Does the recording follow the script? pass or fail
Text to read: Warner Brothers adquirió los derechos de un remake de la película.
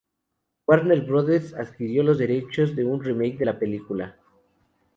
pass